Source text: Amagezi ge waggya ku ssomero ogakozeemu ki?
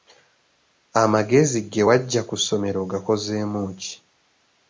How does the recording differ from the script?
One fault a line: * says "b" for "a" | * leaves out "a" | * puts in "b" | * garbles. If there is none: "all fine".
all fine